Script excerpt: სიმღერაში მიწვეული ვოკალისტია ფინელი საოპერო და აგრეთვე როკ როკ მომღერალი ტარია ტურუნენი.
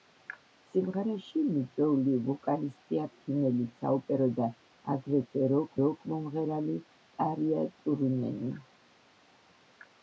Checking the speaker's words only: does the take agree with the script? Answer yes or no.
yes